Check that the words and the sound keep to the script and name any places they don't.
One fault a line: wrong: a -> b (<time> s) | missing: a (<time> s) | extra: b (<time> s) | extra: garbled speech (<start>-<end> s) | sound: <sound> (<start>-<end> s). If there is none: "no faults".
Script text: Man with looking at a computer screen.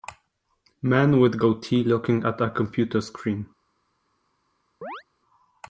extra: goatee (1.4 s)
sound: chirp (4.8-5.0 s)